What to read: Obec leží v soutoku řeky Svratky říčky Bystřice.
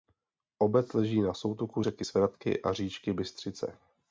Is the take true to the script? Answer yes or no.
no